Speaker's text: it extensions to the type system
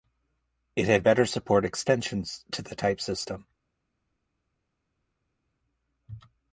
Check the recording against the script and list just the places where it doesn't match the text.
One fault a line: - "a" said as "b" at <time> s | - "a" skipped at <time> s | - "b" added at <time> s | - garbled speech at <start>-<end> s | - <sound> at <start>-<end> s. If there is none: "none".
- "had better support" added at 0.9 s